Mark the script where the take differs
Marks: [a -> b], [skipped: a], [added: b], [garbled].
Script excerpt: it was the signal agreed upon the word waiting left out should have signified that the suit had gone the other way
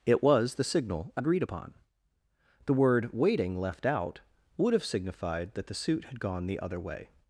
it was the signal agreed upon the word waiting left out [should -> would] have signified that the suit had gone the other way